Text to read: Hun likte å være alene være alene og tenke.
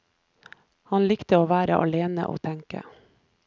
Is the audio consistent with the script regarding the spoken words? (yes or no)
no